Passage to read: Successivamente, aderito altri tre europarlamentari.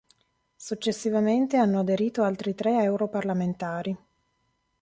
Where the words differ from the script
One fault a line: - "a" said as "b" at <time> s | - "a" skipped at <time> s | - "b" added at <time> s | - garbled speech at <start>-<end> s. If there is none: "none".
- "hanno" added at 1.6 s